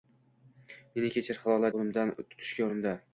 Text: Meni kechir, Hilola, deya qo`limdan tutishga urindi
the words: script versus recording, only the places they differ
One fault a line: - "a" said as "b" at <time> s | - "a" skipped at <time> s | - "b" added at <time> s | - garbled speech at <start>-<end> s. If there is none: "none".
- "deya" skipped at 1.7 s